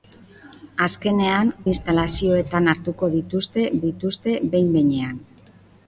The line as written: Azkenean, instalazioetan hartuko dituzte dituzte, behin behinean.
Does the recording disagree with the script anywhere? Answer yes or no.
no